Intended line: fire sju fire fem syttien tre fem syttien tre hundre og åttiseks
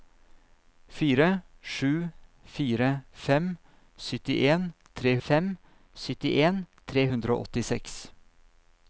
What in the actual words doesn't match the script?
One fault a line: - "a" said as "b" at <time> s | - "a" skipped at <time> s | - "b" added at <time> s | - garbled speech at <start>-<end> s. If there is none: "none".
none